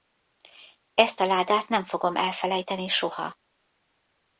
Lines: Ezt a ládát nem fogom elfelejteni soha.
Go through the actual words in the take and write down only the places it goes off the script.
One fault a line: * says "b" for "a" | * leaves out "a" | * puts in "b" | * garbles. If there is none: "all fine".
all fine